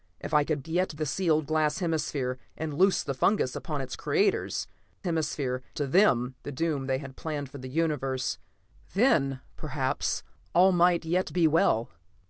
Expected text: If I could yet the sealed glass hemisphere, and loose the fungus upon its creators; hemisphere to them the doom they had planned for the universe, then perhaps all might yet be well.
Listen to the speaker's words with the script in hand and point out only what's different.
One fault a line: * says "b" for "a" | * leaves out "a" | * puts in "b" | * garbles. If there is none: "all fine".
all fine